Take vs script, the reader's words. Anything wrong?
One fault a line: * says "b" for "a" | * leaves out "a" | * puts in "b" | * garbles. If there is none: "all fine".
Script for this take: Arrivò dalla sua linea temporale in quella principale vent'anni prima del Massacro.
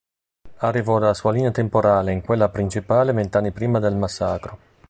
all fine